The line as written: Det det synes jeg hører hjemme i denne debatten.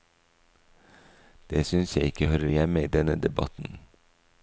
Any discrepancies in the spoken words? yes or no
yes